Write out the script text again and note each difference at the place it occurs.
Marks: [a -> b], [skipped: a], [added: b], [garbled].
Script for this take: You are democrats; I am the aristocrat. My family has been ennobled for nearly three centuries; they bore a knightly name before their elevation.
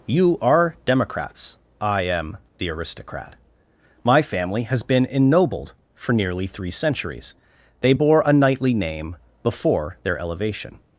You are democrats; I am the aristocrat. My family has been ennobled for nearly three centuries; they bore a knightly name before their elevation.